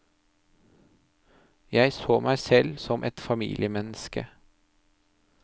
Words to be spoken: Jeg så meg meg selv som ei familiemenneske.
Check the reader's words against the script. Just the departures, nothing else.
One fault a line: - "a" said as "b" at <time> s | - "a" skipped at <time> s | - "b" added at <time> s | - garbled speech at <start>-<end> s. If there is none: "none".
- "meg" skipped at 2.4 s
- "ei" said as "et" at 3.0 s